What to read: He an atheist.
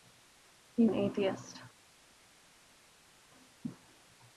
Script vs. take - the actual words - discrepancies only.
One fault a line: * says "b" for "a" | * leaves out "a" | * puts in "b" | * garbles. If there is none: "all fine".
all fine